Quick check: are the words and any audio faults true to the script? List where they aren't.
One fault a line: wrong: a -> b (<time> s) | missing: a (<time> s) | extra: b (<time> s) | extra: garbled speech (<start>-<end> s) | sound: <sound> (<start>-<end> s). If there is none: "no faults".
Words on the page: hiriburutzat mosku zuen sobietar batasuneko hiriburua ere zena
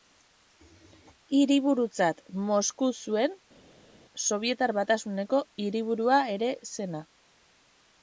no faults